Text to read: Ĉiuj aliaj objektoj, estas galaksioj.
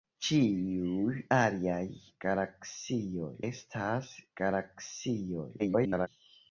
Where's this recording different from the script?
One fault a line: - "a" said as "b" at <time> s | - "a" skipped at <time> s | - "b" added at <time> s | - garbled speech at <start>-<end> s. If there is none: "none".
- "objektoj" said as "galaksioj" at 2.3 s
- garbled speech at 5.6-6.1 s